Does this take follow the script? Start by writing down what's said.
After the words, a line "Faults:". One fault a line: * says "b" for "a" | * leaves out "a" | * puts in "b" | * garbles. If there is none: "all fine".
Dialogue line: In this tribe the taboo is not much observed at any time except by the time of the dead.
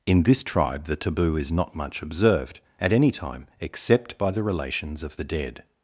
In this tribe the taboo is not much observed at any time except by the relations of the dead.
Faults:
* says "relations" for "time"